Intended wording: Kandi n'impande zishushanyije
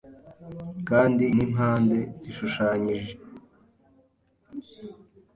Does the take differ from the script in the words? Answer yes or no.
no